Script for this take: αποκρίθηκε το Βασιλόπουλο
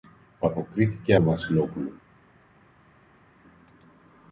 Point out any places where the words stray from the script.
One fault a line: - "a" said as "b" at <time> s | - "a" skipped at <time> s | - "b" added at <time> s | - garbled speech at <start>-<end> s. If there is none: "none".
none